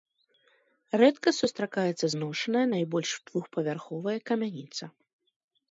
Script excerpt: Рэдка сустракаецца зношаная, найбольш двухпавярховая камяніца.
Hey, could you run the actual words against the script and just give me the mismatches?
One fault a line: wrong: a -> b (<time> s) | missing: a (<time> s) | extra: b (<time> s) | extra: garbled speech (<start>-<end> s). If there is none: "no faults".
no faults